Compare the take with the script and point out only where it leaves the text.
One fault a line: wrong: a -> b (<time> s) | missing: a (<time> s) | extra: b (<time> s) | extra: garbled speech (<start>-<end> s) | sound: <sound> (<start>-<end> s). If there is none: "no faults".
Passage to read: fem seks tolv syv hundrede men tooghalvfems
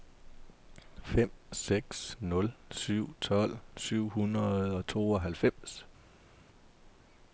extra: nul syv (2.2 s)
wrong: men -> og (4.8 s)